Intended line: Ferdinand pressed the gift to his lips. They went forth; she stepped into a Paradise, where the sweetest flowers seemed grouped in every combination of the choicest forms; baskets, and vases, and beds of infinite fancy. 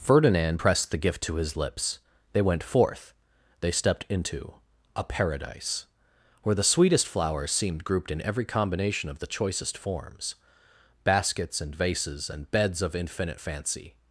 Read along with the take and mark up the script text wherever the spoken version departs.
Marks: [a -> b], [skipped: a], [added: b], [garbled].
Ferdinand pressed the gift to his lips. They went forth; [she -> they] stepped into a Paradise, where the sweetest flowers seemed grouped in every combination of the choicest forms; baskets, and vases, and beds of infinite fancy.